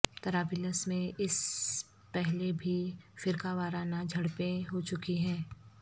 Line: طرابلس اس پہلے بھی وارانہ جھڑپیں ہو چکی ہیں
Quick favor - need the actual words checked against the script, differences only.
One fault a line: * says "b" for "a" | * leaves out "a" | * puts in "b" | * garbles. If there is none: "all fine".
* puts in "میں"
* puts in "فرقہ"